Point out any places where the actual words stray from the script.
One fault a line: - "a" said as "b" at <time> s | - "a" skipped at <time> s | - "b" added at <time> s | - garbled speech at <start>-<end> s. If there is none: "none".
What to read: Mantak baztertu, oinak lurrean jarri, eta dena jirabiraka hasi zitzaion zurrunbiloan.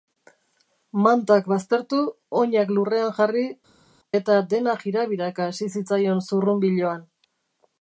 none